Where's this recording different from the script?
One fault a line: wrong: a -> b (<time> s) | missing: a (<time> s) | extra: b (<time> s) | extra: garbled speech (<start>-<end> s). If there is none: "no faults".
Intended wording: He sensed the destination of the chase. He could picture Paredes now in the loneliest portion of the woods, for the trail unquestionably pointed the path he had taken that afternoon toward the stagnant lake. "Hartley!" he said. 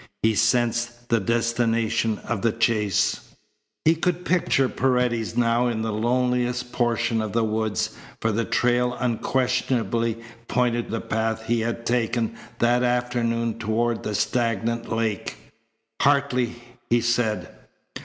no faults